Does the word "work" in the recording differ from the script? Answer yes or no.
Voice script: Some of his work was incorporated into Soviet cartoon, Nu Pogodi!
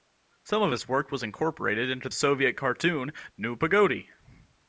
no